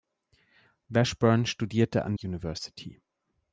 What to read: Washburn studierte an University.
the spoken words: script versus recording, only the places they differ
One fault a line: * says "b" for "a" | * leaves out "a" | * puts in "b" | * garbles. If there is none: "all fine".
all fine